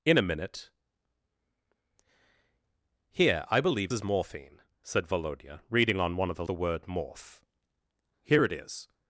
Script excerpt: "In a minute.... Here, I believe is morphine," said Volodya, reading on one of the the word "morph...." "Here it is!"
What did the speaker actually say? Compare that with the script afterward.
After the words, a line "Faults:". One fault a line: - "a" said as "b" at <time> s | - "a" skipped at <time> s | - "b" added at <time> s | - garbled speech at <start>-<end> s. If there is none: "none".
"In a minute.... Here, I believe is morphine," said Volodya, reading on one of the the word "morph...." "Here it is!"
Faults:
none